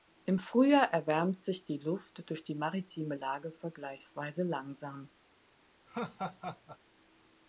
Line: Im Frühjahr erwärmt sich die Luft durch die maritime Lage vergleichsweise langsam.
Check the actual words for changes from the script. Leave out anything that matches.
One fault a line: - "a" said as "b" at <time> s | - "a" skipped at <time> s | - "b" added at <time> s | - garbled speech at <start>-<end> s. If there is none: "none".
none